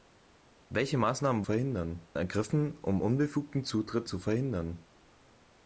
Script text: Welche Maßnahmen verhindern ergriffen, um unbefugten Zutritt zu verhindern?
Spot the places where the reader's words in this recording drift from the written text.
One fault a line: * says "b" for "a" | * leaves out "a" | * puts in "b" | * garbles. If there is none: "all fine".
all fine